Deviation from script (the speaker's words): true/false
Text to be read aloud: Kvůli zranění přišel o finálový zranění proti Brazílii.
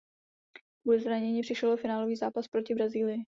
true